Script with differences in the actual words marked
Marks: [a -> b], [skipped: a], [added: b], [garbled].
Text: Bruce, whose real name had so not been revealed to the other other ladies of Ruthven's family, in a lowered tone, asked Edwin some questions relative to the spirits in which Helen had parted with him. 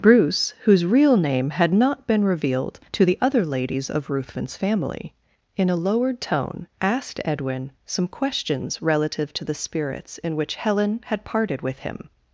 Bruce, whose real name had [skipped: so] not been revealed to the other [skipped: other] ladies of Ruthven's family, in a lowered tone, asked Edwin some questions relative to the spirits in which Helen had parted with him.